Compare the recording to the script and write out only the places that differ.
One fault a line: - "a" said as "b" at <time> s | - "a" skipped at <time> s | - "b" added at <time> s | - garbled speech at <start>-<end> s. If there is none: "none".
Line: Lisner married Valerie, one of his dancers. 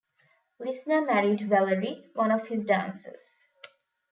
none